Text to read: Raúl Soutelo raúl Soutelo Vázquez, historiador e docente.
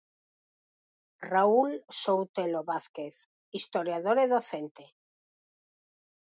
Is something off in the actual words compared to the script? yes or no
yes